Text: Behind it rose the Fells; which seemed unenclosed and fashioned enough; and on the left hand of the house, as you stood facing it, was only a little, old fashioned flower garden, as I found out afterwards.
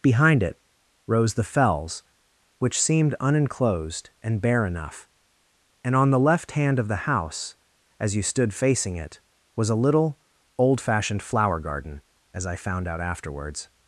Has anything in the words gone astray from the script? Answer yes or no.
yes